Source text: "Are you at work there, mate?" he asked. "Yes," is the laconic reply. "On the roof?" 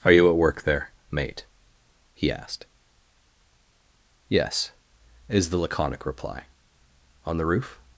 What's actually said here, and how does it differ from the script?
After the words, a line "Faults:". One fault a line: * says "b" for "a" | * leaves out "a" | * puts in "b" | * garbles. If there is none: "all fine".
"Are you at work there, mate?" he asked. "Yes," is the laconic reply. "On the roof?"
Faults:
all fine